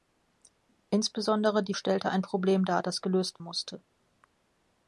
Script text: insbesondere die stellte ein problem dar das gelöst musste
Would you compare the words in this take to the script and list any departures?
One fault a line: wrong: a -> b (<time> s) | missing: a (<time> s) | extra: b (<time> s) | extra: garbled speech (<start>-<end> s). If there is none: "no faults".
no faults